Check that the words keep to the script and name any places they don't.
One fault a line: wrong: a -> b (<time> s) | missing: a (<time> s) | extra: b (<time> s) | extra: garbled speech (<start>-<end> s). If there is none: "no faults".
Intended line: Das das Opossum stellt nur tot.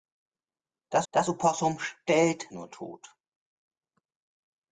no faults